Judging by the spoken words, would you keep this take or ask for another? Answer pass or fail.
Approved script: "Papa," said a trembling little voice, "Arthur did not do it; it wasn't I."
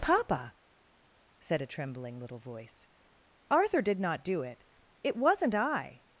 pass